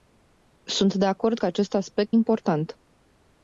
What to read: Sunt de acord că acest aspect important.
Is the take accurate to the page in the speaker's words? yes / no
yes